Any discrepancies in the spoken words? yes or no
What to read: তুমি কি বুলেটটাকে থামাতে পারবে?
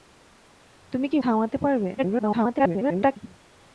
yes